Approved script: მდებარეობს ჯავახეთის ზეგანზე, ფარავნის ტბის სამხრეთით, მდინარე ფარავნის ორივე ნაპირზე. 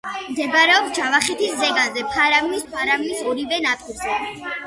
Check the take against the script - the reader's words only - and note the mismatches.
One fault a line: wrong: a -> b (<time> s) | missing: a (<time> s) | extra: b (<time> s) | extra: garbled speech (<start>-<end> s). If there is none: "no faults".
missing: ტბის სამხრეთით მდინარე (2.6 s)